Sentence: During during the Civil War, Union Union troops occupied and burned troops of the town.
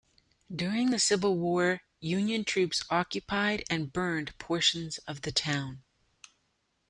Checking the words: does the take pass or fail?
fail